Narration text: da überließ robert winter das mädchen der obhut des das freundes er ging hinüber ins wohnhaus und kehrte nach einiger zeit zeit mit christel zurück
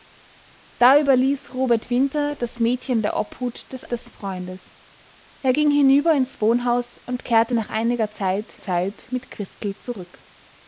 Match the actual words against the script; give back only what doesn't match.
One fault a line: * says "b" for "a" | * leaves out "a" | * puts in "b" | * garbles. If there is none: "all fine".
all fine